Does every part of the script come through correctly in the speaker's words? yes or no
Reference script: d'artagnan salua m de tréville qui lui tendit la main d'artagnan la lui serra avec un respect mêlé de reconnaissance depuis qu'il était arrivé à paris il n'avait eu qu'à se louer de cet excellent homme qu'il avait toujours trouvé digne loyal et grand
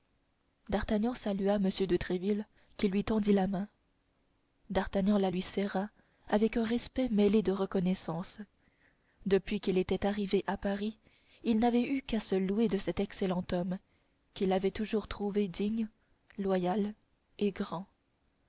yes